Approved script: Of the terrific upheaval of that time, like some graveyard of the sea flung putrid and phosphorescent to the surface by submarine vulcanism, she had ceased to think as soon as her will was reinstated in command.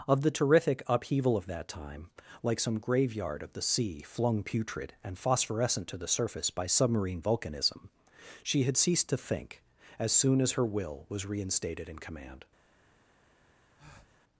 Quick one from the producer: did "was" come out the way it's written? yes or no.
yes